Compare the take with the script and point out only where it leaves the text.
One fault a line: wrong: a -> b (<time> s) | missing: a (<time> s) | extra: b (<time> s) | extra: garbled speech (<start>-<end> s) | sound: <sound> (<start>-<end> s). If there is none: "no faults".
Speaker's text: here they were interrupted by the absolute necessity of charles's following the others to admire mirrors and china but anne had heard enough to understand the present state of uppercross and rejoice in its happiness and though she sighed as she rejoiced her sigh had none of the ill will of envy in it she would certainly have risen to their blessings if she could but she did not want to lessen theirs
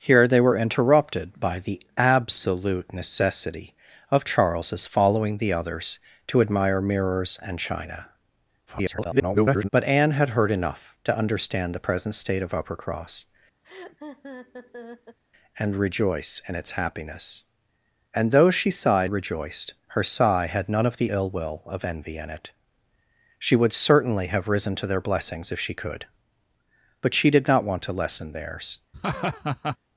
extra: garbled speech (8.7-9.7 s)
sound: laugh (13.6-15.2 s)
missing: as she (19.1 s)
sound: laugh (28.9-29.8 s)